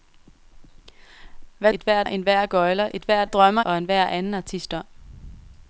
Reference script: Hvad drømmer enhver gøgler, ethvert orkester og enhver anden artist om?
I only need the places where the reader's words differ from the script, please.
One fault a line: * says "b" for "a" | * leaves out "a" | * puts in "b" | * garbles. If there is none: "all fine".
* says "ethvert" for "drømmer"
* says "drømmer" for "orkester"